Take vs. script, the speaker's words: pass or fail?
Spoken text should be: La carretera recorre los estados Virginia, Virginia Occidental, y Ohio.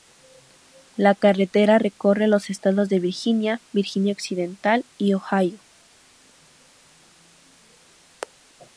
fail